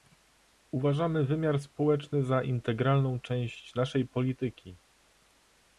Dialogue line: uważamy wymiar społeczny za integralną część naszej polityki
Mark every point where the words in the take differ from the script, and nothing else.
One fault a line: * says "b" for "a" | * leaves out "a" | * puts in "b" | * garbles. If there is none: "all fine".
all fine